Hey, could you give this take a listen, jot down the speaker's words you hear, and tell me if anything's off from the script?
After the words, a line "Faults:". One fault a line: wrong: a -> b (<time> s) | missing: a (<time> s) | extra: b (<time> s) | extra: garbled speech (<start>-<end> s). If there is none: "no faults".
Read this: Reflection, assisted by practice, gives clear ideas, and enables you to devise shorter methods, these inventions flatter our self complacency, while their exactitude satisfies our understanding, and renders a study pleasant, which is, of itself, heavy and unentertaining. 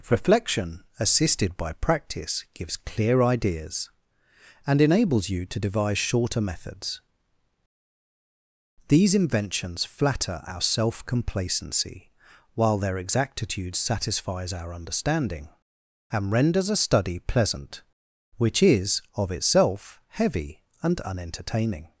Reflection, assisted by practice, gives clear ideas, and enables you to devise shorter methods, these inventions flatter our self complacency, while their exactitude satisfies our understanding, and renders a study pleasant, which is, of itself, heavy and unentertaining.
Faults:
no faults